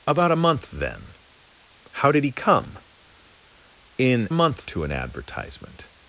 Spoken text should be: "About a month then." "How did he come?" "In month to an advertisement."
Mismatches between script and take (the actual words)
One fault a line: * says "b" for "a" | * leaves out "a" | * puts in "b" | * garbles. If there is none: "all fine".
all fine